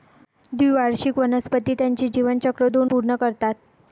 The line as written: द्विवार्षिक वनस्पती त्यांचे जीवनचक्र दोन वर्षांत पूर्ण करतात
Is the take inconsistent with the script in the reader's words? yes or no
yes